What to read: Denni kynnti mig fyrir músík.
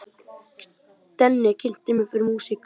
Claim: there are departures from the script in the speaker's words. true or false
false